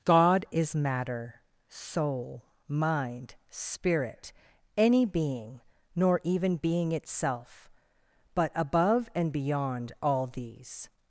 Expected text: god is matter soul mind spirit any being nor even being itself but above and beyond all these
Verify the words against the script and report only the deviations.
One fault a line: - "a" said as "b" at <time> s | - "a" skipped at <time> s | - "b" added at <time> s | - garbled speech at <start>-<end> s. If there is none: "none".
none